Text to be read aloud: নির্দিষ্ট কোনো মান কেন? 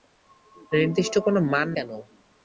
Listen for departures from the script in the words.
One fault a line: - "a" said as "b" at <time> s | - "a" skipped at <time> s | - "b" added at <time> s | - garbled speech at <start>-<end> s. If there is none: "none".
none